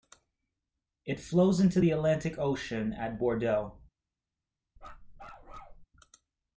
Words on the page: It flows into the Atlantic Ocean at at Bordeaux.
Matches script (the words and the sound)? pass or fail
fail